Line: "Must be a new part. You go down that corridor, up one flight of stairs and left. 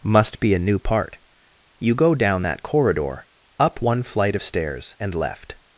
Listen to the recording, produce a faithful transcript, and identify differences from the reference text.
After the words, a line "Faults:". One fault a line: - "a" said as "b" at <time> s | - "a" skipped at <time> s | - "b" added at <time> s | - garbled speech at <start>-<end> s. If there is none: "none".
"Must be a new part. You go down that corridor, up one flight of stairs and left.
Faults:
none